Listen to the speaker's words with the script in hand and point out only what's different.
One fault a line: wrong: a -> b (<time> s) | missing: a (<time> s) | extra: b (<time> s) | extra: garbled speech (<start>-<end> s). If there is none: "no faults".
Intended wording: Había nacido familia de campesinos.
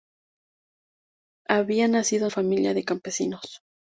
no faults